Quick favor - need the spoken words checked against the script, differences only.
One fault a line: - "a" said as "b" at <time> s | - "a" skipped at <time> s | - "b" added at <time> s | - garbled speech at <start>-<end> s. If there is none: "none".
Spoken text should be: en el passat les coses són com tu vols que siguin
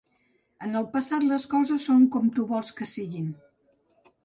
none